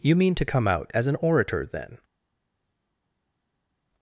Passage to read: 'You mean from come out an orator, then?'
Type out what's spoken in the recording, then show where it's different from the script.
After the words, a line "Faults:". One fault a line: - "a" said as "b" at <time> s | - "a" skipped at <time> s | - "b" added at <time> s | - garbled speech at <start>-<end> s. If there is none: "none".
'You mean to come out as an orator, then?'
Faults:
- "from" said as "to" at 0.3 s
- "as" added at 0.9 s